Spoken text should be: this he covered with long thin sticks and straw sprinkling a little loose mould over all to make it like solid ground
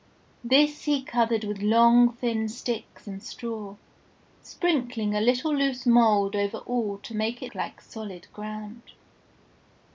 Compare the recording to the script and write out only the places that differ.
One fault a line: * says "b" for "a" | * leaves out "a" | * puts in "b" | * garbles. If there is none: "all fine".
all fine